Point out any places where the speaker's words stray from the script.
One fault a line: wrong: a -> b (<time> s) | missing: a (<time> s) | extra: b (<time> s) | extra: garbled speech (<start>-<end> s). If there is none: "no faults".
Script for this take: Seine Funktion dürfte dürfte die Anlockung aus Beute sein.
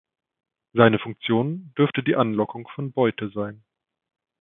missing: dürfte (2.0 s)
wrong: aus -> von (2.7 s)